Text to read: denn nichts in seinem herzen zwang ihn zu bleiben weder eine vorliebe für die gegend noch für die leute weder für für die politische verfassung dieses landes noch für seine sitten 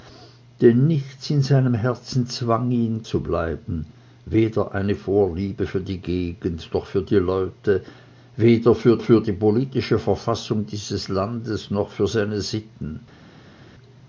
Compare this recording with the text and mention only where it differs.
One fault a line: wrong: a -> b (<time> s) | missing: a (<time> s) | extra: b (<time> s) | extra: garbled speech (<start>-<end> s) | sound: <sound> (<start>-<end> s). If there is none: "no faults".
no faults